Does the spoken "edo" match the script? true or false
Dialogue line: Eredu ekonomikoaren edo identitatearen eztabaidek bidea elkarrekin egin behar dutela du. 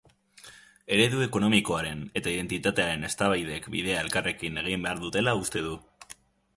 false